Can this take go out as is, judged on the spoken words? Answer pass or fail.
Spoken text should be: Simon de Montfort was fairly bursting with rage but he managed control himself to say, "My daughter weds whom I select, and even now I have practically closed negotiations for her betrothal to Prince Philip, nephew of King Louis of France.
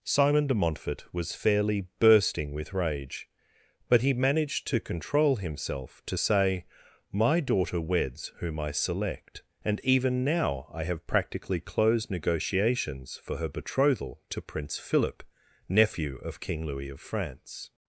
fail